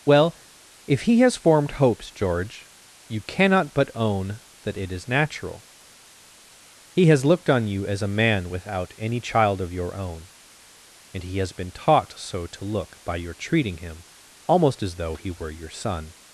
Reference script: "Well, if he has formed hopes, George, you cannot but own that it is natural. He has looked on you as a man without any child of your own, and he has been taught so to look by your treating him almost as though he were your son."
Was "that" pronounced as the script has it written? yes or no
yes